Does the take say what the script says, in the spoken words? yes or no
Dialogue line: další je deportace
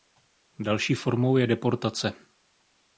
no